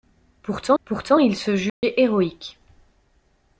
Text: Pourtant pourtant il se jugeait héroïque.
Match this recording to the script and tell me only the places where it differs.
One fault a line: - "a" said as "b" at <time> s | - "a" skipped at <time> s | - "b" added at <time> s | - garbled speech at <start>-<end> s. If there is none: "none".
none